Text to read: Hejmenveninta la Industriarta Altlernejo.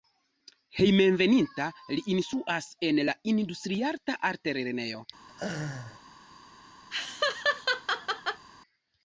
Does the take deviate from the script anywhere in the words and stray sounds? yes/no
yes